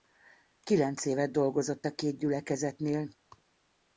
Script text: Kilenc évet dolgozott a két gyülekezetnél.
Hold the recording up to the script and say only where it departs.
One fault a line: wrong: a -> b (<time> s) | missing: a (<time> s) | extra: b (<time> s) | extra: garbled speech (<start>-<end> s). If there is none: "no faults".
no faults